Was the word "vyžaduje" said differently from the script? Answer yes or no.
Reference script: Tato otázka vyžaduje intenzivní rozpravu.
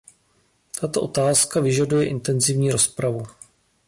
no